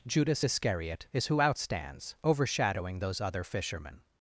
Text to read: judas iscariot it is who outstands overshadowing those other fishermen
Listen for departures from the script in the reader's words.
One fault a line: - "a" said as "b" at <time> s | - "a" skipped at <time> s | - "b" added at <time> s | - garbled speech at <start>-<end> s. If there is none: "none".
- "it" skipped at 1.1 s